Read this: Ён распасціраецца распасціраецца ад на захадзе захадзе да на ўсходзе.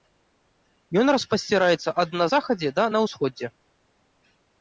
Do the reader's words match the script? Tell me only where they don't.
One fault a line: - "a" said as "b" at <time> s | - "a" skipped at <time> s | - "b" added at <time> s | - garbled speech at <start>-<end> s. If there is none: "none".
- "распасціраецца" skipped at 1.9 s
- "захадзе" skipped at 2.7 s